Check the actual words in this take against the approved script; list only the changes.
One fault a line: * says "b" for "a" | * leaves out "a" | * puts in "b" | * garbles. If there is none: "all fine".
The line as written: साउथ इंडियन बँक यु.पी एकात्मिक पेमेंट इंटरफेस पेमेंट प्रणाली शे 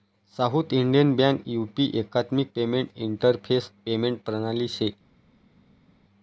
all fine